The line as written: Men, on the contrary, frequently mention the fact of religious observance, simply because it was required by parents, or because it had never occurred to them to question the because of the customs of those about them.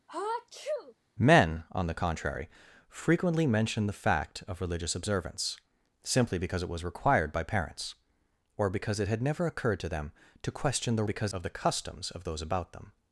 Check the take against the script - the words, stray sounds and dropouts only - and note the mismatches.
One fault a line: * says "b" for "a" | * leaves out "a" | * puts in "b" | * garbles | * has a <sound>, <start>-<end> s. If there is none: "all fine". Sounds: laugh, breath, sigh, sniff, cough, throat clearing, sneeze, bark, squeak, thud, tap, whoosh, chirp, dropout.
* has a sneeze, 0.1-0.9 s